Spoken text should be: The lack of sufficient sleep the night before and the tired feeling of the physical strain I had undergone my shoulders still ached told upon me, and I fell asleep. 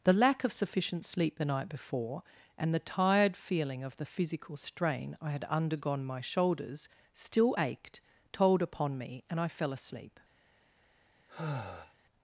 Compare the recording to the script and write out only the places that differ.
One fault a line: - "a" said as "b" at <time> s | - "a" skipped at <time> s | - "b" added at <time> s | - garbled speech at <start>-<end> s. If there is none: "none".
none